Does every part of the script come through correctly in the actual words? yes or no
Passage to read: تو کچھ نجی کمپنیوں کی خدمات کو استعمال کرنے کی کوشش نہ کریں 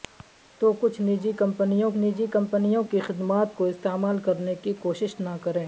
no